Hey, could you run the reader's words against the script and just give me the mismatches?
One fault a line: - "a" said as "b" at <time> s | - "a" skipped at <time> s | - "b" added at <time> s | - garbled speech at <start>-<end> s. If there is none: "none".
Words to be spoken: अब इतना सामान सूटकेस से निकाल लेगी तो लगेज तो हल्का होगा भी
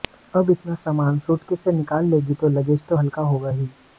- "भी" said as "ही" at 3.5 s